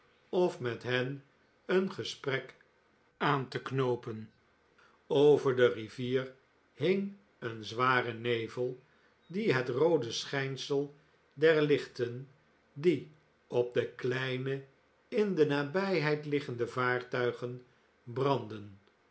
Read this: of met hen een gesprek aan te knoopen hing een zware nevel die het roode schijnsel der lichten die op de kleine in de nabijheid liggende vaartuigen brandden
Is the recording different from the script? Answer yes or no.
yes